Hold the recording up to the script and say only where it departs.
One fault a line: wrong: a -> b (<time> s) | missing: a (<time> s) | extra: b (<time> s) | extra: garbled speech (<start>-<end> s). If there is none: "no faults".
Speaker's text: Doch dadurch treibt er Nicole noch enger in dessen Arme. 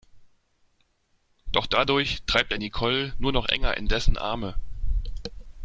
extra: nur (3.2 s)